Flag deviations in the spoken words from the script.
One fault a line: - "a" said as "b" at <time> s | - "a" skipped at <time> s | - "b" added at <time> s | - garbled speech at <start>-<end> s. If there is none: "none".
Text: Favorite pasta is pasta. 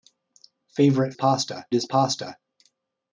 none